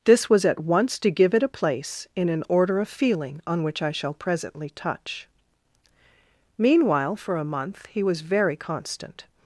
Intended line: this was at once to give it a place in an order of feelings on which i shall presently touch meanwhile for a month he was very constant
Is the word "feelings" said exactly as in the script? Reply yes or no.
no